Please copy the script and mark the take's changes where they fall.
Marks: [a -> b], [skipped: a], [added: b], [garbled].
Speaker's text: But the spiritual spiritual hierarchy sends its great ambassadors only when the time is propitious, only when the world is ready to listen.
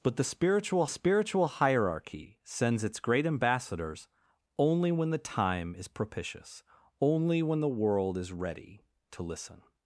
But the spiritual spiritual hierarchy sends its great ambassadors only when the time is propitious, only when the world is ready to listen.